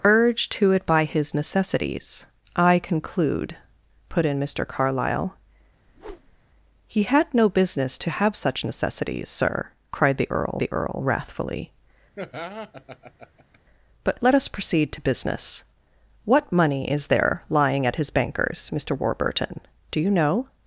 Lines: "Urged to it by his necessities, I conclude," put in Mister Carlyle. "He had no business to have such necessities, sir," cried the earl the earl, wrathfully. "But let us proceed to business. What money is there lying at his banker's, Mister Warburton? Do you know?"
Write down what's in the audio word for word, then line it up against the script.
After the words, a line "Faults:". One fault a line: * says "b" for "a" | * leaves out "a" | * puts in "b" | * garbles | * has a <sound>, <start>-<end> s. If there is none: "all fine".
"Urged to it by his necessities, I conclude," put in Mister Carlyle. "He had no business to have such necessities, sir," cried the earl the earl, wrathfully. "But let us proceed to business. What money is there lying at his banker's, Mister Warburton? Do you know?"
Faults:
* has a whoosh, 5.9-6.4 s
* has a laugh, 12.2-13.6 s